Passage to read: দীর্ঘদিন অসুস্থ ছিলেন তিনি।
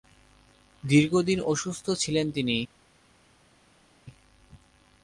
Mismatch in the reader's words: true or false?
false